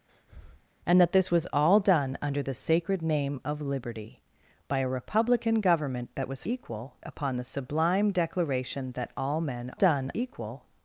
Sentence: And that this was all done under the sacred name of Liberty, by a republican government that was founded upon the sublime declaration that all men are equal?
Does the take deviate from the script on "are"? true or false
true